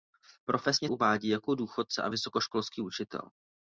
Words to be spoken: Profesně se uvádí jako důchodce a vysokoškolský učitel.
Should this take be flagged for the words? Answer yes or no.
yes